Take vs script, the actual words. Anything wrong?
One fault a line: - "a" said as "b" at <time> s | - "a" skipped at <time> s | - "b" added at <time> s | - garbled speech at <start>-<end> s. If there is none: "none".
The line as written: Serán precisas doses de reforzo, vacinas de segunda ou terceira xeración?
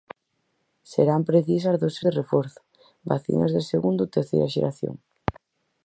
none